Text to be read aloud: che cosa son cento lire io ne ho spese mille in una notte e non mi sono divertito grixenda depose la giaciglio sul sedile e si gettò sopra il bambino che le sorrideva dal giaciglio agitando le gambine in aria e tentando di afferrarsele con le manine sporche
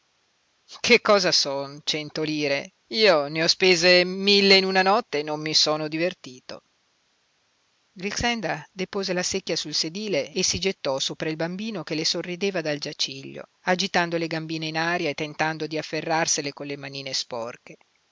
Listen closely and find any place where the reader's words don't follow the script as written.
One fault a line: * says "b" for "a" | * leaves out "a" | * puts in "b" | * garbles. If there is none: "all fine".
* says "secchia" for "giaciglio"